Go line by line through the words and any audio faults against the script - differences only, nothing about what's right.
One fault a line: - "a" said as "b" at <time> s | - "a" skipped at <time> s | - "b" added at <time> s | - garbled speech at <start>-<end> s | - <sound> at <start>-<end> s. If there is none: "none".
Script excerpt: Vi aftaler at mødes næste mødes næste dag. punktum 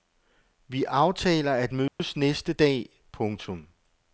- dropout at 1.9-2.0 s
- "mødes næste" skipped at 2.5 s